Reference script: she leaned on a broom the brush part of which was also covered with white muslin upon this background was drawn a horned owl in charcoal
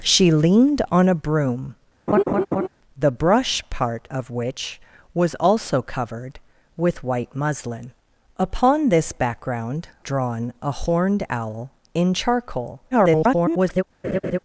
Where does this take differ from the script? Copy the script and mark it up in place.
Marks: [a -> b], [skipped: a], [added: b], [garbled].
she leaned on a broom the brush part of which was also covered with white muslin upon this background [skipped: was] drawn a horned owl in charcoal [garbled]